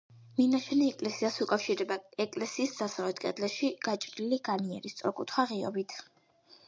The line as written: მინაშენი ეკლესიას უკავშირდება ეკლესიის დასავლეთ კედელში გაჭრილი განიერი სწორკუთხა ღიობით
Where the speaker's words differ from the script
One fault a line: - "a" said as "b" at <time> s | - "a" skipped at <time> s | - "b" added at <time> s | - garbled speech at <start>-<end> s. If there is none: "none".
none